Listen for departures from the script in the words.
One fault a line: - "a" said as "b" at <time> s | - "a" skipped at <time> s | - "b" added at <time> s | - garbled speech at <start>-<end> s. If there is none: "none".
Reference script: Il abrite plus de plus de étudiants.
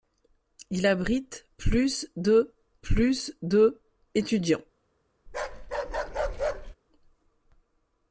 none